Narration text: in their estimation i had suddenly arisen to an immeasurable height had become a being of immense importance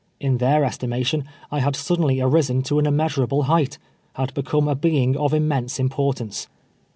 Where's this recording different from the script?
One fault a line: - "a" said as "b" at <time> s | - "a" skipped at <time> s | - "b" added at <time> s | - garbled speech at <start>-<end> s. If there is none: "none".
none